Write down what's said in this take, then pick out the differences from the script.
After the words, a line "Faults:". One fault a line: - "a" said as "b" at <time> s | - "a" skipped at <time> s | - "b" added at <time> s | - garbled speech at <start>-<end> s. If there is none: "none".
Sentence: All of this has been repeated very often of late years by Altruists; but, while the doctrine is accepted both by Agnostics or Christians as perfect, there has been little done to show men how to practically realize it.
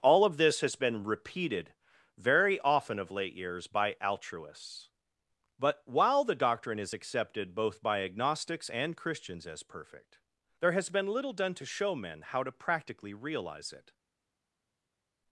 All of this has been repeated very often of late years by Altruists; but, while the doctrine is accepted both by Agnostics and Christians as perfect, there has been little done to show men how to practically realize it.
Faults:
- "or" said as "and" at 8.7 s